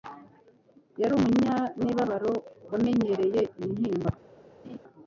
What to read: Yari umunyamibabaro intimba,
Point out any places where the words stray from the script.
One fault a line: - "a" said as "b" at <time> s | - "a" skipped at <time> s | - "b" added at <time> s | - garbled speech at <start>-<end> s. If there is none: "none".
- "wamenyereye" added at 2.7 s